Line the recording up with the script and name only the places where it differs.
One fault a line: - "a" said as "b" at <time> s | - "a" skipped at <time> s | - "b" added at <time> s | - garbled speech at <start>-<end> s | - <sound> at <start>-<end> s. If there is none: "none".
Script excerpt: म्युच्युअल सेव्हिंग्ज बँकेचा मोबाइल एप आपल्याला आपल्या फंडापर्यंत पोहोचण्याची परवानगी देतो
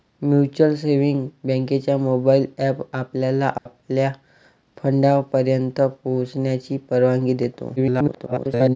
- dropout at 3.6-3.7 s
- garbled speech at 7.8-8.8 s